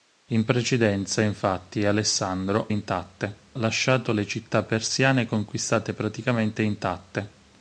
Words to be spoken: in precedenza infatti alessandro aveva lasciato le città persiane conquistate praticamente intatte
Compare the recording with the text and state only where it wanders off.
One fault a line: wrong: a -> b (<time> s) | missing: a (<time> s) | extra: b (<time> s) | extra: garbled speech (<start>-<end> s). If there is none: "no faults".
wrong: aveva -> intatte (2.7 s)